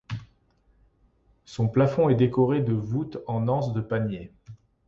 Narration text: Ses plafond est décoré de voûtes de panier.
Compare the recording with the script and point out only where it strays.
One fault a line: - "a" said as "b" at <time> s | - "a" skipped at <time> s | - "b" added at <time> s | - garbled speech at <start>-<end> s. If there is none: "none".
- "Ses" said as "Son" at 1.4 s
- "en anse" added at 3.3 s